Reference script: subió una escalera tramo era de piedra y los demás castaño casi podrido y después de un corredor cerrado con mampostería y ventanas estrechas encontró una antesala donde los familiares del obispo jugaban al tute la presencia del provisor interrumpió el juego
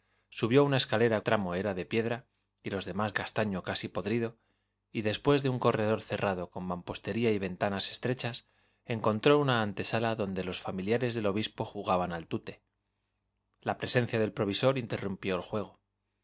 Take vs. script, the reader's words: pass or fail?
pass